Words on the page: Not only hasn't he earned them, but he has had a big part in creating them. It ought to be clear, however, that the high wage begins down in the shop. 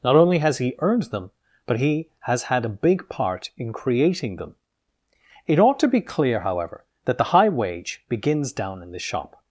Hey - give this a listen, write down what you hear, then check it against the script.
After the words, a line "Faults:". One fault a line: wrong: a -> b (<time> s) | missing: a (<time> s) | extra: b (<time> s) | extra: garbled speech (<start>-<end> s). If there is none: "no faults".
Not only has he earned them, but he has had a big part in creating them. It ought to be clear, however, that the high wage begins down in the shop.
Faults:
wrong: hasn't -> has (0.4 s)